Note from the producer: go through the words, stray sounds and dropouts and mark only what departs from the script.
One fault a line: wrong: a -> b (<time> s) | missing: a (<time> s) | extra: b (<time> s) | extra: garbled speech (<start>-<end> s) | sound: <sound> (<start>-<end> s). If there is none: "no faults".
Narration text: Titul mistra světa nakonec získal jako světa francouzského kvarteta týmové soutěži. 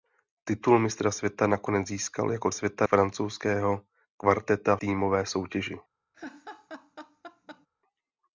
sound: laugh (6.1-7.7 s)